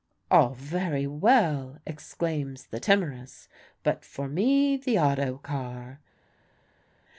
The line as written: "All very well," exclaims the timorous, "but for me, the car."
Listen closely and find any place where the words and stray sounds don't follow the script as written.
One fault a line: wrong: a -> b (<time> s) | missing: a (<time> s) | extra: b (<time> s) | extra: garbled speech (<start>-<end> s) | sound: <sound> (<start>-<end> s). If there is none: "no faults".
extra: auto (5.0 s)